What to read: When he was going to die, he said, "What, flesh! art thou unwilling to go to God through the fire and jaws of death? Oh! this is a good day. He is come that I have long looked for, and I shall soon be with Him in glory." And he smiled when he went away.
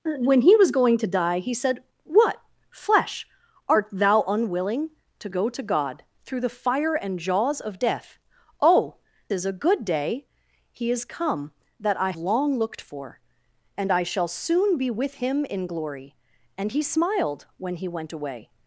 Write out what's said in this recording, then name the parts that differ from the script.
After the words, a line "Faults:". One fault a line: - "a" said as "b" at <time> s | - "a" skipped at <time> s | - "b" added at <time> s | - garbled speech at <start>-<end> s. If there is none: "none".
When he was going to die, he said, "What, flesh! art thou unwilling to go to God through the fire and jaws of death? Oh! is a good day. He is come that I long looked for, and I shall soon be with Him in glory." And he smiled when he went away.
Faults:
- "this" skipped at 9.0 s
- "have" skipped at 12.1 s